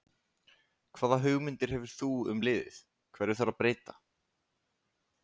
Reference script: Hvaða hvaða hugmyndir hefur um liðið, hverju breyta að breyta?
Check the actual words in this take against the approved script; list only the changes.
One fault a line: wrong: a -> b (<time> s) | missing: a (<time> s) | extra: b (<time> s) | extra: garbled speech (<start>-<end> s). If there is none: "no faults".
missing: hvaða (1.2 s)
extra: þú (2.0 s)
wrong: breyta -> þarf (3.4 s)